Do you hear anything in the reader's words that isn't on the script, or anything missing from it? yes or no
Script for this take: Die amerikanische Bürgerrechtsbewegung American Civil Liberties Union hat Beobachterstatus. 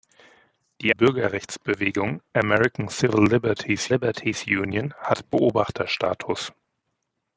yes